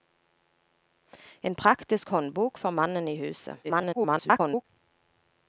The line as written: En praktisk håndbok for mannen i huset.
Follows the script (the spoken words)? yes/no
no